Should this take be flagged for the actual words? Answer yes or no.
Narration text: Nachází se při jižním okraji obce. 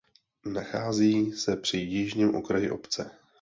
no